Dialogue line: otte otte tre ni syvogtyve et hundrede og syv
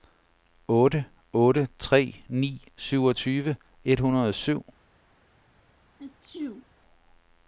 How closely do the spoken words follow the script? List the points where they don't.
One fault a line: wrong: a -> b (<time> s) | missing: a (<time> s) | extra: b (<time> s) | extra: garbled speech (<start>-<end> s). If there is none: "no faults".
no faults